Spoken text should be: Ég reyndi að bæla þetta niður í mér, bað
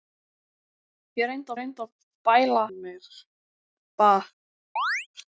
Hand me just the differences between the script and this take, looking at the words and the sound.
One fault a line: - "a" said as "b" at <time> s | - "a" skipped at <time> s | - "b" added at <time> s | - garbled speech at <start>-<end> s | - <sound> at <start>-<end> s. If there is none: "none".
- "reyndi" added at 1.6 s
- "þetta niður" skipped at 2.6 s
- chirp at 4.8-5.1 s